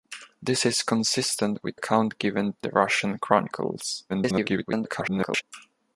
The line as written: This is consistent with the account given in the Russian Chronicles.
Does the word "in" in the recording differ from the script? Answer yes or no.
yes